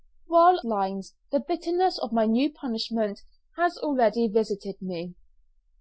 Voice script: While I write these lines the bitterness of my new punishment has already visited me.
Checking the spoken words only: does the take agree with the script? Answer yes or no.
no